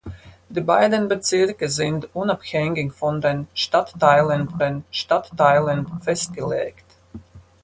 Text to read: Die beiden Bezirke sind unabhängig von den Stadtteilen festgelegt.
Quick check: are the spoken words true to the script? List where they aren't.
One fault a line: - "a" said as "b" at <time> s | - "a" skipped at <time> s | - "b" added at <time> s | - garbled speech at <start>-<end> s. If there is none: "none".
- "den Stadtteilen" added at 4.6 s